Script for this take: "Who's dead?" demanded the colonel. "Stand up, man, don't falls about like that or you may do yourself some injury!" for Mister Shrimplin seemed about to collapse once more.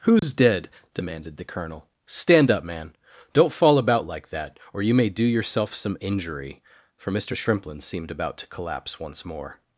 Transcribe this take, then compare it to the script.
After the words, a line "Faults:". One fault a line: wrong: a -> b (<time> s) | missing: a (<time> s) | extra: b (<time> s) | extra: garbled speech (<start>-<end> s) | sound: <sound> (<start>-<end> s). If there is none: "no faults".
"Who's dead?" demanded the colonel. "Stand up, man, don't fall about like that or you may do yourself some injury!" for Mister Shrimplin seemed about to collapse once more.
Faults:
sound: dropout (0.2-0.2 s)
wrong: falls -> fall (3.5 s)